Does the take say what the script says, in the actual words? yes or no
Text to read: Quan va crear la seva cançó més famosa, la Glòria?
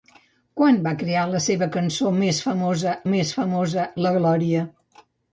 no